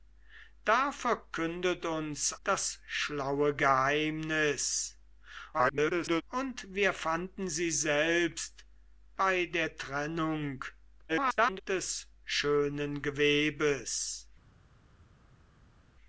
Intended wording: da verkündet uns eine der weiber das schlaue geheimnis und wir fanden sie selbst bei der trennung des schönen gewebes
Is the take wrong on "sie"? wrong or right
right